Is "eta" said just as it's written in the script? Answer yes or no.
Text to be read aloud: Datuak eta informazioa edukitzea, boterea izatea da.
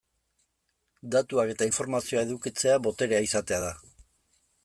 yes